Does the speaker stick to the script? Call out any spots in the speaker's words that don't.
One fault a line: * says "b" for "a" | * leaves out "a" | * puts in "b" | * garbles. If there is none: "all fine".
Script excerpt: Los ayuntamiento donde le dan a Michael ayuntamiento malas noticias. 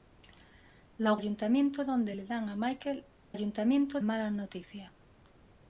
all fine